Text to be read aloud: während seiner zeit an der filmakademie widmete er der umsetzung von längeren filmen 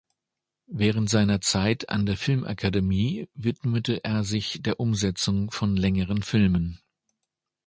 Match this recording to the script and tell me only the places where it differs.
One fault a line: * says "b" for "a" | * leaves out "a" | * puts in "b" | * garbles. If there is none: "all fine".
* puts in "sich"